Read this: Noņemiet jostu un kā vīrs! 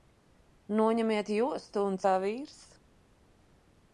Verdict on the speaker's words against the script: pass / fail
pass